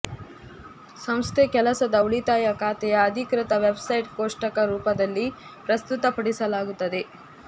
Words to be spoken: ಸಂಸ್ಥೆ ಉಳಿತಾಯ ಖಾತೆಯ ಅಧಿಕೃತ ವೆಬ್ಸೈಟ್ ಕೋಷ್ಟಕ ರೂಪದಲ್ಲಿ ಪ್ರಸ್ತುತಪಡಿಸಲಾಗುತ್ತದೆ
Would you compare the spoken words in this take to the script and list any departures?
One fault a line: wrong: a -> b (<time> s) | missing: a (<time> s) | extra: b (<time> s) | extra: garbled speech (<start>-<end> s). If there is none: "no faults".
extra: ಕೆಲಸದ (1.5 s)